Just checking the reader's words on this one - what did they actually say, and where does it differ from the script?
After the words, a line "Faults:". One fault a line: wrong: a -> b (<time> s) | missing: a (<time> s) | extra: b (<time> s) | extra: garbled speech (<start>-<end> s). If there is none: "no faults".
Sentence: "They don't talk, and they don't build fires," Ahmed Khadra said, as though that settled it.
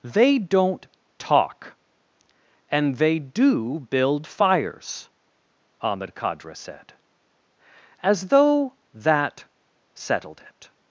"They don't talk, and they do build fires," Ahmed Khadra said, as though that settled it.
Faults:
wrong: don't -> do (3.2 s)